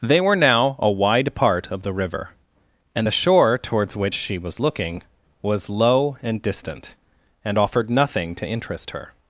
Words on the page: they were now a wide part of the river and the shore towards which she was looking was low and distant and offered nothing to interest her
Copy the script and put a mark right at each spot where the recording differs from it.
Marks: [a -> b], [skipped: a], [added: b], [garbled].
they were now a wide part of the river and the shore towards which she was looking was low and distant and offered nothing to interest her